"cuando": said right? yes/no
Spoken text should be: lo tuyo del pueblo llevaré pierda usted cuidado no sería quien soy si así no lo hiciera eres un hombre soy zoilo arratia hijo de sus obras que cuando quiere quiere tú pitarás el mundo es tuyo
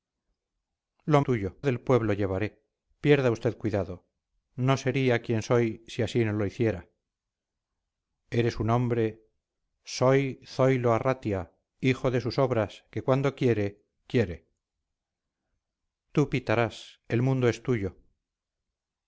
yes